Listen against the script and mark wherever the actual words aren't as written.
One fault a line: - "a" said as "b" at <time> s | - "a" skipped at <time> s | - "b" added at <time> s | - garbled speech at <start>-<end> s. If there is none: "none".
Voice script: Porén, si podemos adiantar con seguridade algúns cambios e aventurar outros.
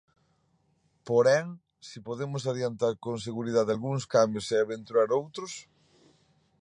none